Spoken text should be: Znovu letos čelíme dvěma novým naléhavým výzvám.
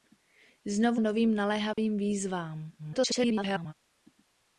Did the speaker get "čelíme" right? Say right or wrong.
wrong